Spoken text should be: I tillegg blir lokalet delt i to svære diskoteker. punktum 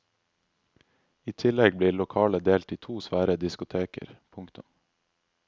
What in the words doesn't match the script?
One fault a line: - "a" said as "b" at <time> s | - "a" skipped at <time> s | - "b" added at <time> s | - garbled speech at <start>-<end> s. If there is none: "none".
none